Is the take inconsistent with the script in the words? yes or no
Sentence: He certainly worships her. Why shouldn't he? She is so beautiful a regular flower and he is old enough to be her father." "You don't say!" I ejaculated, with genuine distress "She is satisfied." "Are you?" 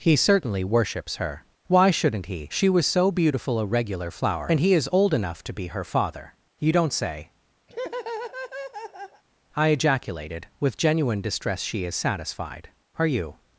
yes